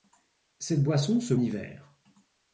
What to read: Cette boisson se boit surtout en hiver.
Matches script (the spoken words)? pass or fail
fail